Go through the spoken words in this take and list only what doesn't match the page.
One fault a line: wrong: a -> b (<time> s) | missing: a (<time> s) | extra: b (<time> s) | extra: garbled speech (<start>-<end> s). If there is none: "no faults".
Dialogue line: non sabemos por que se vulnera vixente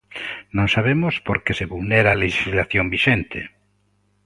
extra: a lexislación (2.1 s)